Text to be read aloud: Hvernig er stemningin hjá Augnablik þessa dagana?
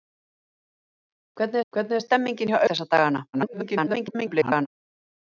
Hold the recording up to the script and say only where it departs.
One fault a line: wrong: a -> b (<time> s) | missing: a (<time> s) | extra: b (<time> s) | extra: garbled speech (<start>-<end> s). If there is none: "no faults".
extra: hvernig (1.7 s)
missing: Augnablik (2.6 s)
extra: garbled speech (3.3-4.7 s)